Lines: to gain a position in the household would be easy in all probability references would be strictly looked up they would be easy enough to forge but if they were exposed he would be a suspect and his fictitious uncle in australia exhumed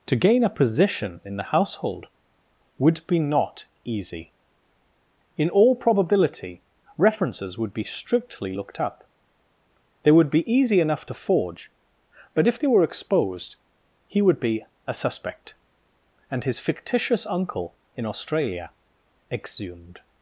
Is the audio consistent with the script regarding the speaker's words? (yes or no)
no